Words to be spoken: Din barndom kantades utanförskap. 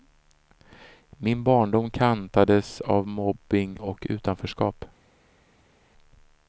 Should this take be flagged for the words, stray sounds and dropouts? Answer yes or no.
yes